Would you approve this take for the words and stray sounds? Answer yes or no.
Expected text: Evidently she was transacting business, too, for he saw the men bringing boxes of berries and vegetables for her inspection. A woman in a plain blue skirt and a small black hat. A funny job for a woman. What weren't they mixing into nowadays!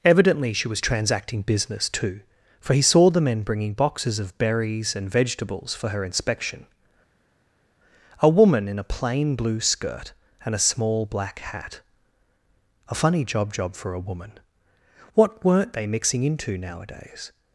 no